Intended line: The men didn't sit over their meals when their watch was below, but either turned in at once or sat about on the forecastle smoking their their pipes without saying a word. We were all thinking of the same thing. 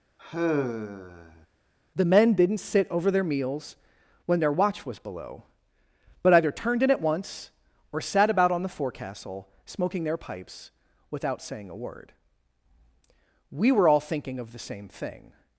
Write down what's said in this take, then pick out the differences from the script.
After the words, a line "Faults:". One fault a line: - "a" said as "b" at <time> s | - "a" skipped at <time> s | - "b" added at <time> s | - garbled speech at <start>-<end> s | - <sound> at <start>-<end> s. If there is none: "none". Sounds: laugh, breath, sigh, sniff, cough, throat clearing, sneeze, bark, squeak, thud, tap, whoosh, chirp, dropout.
The men didn't sit over their meals when their watch was below, but either turned in at once or sat about on the forecastle smoking their pipes without saying a word. We were all thinking of the same thing.
Faults:
- sigh at 0.2-1.5 s
- "their" skipped at 10.2 s